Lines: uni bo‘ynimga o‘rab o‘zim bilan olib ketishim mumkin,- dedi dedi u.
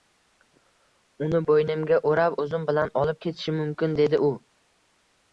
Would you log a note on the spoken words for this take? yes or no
yes